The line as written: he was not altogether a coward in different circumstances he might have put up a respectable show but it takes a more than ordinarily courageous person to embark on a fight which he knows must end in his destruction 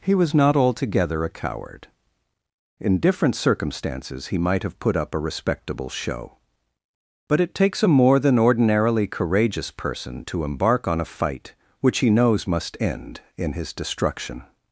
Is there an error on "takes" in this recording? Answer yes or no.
no